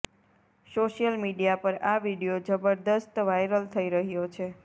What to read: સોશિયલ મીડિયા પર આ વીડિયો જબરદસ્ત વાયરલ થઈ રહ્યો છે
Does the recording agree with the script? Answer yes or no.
yes